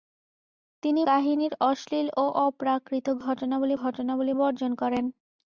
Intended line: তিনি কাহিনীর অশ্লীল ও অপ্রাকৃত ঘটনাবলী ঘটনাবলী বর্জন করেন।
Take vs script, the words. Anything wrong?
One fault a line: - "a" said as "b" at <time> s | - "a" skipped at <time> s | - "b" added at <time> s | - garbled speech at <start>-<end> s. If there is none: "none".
none